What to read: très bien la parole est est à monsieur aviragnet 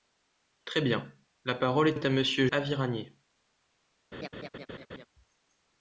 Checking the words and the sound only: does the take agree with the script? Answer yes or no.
no